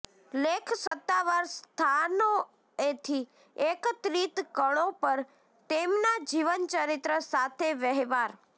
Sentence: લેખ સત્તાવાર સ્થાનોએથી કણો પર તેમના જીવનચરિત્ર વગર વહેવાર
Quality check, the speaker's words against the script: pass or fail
fail